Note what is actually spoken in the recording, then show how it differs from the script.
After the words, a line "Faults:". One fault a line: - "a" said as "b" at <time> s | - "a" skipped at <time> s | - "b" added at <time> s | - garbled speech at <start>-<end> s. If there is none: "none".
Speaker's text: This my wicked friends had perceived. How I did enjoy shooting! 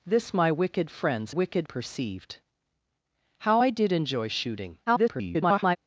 This my wicked friends wicked perceived. How I did enjoy shooting! [garbled]
Faults:
- "had" said as "wicked" at 1.3 s
- garbled speech at 4.9-5.8 s